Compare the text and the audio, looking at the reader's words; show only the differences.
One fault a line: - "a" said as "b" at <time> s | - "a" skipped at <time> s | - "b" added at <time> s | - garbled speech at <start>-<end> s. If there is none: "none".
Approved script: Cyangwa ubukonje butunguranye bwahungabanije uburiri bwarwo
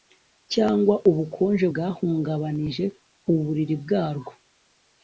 - "butunguranye" skipped at 1.6 s